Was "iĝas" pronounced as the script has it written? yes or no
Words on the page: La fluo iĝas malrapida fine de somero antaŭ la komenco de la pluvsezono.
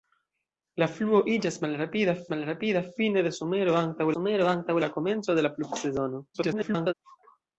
yes